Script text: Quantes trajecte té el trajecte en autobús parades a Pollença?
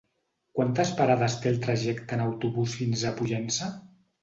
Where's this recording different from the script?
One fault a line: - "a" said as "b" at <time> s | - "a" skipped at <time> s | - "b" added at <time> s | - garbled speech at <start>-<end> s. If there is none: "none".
- "trajecte" said as "parades" at 1.0 s
- "parades" said as "fins" at 2.8 s